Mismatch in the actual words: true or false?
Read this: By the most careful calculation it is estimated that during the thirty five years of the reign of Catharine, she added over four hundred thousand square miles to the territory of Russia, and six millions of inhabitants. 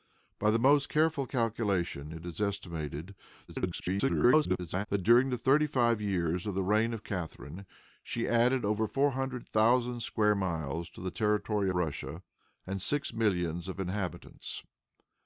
true